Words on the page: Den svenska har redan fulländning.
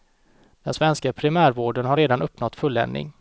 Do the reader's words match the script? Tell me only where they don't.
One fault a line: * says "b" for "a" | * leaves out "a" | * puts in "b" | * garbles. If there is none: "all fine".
* puts in "primärvården"
* puts in "uppnått"